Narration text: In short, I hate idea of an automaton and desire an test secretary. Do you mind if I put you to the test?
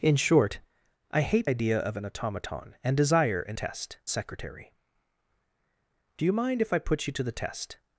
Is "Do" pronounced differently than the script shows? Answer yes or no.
no